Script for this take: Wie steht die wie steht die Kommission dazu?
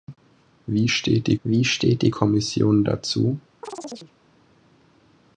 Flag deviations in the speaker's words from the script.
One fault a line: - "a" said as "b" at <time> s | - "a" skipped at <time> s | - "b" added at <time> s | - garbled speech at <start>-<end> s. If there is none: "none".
none